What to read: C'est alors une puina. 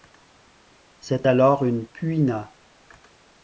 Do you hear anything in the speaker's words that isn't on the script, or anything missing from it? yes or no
no